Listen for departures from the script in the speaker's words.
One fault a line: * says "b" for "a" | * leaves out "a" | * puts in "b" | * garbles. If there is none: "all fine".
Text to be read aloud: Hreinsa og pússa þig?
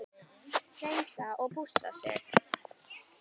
all fine